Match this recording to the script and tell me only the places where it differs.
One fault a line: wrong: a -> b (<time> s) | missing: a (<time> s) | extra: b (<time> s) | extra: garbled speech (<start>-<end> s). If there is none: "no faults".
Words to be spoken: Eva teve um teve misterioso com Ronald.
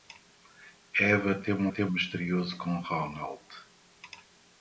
no faults